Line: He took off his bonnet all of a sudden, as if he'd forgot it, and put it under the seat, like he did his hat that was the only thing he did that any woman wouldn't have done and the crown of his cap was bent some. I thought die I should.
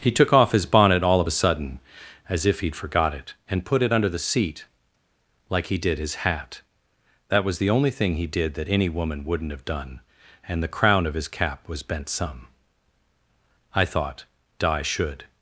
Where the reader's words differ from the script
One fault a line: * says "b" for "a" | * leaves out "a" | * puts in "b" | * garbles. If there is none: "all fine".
* says "di" for "die I"